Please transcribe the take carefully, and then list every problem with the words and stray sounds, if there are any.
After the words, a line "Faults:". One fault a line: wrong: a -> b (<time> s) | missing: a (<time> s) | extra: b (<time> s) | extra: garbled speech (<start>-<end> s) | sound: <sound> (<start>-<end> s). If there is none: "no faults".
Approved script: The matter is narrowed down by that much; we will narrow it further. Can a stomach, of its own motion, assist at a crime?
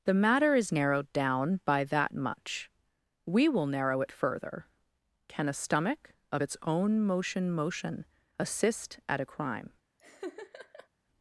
The matter is narrowed down by that much; we will narrow it further. Can a stomach, of its own motion motion, assist at a crime?
Faults:
extra: motion (7.5 s)
sound: laugh (10.0-10.9 s)